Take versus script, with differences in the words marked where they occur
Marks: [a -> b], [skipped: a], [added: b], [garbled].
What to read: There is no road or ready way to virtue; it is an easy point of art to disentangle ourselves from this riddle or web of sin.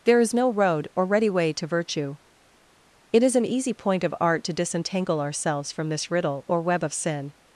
There is no road or ready way to virtue; it is an easy point of art to disentangle ourselves from this riddle or web of sin.